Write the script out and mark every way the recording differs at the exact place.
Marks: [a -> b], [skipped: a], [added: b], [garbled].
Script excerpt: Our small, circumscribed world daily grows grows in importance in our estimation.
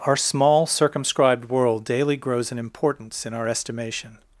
Our small, circumscribed world daily grows [skipped: grows] in importance in our estimation.